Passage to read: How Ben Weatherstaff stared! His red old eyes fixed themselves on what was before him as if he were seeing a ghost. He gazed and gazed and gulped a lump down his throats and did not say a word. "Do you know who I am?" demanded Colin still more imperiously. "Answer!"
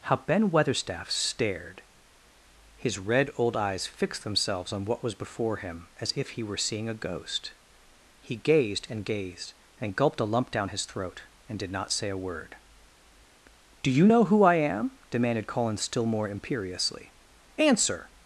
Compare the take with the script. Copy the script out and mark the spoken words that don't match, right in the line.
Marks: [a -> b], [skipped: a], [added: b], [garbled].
How Ben Weatherstaff stared! His red old eyes fixed themselves on what was before him as if he were seeing a ghost. He gazed and gazed and gulped a lump down his [throats -> throat] and did not say a word. "Do you know who I am?" demanded Colin still more imperiously. "Answer!"